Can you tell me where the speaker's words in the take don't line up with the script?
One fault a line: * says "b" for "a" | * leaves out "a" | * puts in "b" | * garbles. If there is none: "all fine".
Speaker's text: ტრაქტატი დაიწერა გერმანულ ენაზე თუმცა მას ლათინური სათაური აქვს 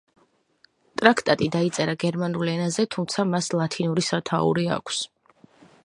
all fine